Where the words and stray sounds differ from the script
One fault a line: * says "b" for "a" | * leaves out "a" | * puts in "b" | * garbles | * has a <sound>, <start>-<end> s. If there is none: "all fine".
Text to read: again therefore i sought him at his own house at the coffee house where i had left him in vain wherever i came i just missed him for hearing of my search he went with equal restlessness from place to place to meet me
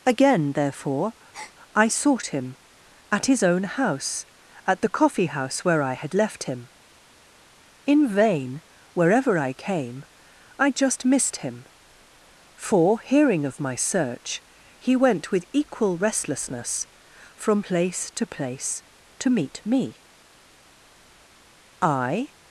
* has a breath, 1.3-1.6 s
* puts in "i"